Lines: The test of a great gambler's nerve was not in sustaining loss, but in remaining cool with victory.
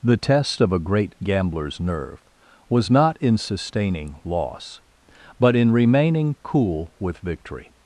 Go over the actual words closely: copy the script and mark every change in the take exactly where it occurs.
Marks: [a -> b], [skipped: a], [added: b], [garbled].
The test of a great gambler's nerve was not in sustaining loss, but in remaining cool with victory.